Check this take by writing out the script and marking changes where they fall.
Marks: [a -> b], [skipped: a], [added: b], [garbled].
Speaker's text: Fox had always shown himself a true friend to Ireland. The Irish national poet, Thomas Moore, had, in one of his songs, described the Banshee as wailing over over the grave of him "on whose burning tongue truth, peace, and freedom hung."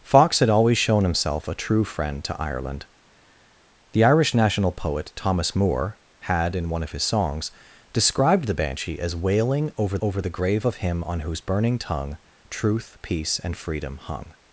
Fox had always shown himself a true friend to Ireland. The Irish national poet, Thomas Moore, had, in one of his songs, described the Banshee as wailing over over the grave of him "on whose burning tongue truth, peace, and freedom hung."